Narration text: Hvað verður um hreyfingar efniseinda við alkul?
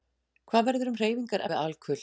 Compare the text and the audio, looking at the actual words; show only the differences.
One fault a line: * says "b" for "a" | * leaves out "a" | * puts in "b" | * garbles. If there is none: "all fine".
* leaves out "efniseinda"